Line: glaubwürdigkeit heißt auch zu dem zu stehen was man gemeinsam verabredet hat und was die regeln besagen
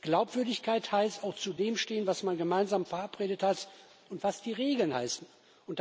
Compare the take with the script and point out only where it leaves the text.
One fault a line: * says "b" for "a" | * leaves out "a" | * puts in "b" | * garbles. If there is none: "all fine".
all fine